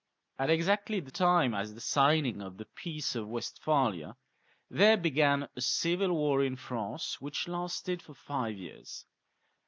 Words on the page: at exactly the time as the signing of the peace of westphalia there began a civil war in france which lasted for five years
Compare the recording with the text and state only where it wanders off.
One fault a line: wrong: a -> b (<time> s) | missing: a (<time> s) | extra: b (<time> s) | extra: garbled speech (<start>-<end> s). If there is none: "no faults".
no faults